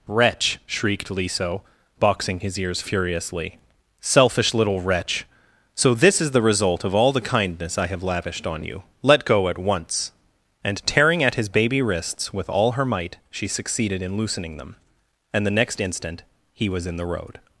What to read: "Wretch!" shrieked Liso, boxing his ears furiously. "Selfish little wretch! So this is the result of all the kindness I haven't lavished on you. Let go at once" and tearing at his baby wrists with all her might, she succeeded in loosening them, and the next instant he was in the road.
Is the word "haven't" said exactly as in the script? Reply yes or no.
no